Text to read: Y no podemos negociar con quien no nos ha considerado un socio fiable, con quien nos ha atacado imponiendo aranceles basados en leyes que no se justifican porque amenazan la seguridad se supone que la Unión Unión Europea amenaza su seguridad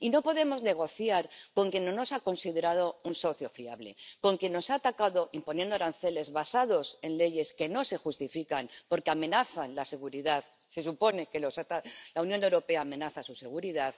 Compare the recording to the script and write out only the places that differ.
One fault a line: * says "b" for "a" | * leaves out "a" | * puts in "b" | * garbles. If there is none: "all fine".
* leaves out "Unión"